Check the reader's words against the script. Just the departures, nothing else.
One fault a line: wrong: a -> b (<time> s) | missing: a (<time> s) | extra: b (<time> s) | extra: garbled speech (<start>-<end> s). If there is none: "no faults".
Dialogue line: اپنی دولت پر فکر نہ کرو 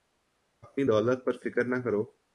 no faults